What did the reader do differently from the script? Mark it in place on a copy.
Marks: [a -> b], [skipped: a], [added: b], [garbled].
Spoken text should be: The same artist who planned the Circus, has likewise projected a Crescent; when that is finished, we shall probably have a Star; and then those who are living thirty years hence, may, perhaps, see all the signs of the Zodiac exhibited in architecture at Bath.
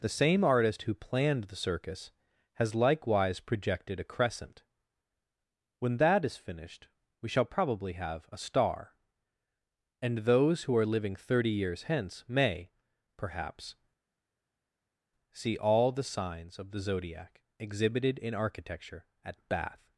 The same artist who planned the Circus, has likewise projected a Crescent; when that is finished, we shall probably have a Star; and [skipped: then] those who are living thirty years hence, may, perhaps, see all the signs of the Zodiac exhibited in architecture at Bath.